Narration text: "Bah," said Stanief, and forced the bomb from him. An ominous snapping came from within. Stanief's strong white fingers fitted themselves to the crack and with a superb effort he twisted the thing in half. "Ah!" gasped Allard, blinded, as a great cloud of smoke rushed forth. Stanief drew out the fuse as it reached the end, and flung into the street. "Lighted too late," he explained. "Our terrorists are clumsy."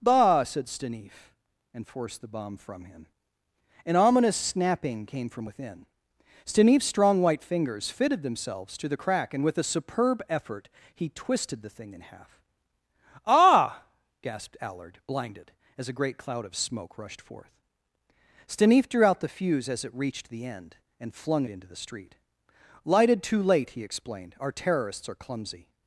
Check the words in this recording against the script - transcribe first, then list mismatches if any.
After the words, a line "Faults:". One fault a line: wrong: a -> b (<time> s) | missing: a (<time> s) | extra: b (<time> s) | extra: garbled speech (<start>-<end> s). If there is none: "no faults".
"Bah," said Stanief, and forced the bomb from him. An ominous snapping came from within. Stanief's strong white fingers fitted themselves to the crack and with a superb effort he twisted the thing in half. "Ah!" gasped Allard, blinded, as a great cloud of smoke rushed forth. Stanief drew out the fuse as it reached the end, and flung into the street. "Lighted too late," he explained. "Our terrorists are clumsy."
Faults:
no faults